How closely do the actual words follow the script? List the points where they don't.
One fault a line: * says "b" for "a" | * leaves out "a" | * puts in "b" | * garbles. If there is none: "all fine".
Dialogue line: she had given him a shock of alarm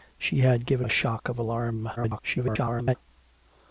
* leaves out "him"
* garbles